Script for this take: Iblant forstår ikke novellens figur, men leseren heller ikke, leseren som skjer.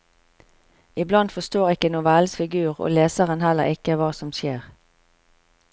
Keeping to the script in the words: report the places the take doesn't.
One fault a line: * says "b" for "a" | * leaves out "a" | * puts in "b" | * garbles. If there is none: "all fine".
* says "og" for "men"
* says "hva" for "leseren"